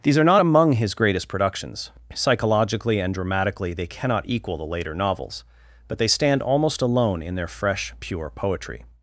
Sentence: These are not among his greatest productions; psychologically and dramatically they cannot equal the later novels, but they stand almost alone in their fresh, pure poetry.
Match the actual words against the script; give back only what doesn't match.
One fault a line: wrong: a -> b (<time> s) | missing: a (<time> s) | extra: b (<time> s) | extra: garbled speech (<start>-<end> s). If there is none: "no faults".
no faults